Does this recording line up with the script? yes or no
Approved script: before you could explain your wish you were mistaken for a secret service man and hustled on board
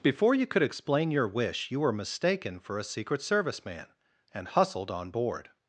yes